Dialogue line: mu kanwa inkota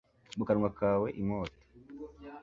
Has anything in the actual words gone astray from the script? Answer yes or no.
yes